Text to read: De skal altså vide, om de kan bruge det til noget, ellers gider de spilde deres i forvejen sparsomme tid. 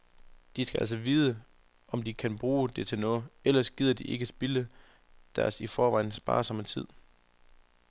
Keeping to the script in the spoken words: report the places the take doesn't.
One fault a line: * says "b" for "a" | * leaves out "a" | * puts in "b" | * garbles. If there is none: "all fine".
* puts in "ikke"